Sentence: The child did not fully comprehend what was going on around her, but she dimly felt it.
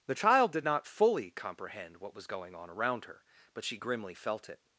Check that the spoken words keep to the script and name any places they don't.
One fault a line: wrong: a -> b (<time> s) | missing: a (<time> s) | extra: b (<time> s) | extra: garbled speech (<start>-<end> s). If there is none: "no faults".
wrong: dimly -> grimly (3.7 s)